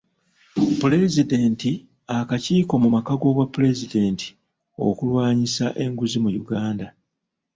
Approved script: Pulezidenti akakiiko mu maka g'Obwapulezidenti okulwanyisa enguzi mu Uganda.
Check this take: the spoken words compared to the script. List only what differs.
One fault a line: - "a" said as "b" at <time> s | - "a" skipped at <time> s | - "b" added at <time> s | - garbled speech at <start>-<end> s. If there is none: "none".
none